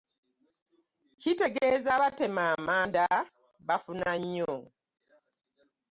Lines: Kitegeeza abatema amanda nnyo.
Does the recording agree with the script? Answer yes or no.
no